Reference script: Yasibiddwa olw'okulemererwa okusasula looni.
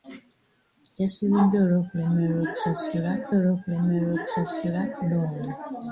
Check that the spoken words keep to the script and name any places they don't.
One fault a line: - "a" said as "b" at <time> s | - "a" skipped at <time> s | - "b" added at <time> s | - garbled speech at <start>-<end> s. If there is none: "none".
- "olw'okulemererwa okusasula" added at 3.4 s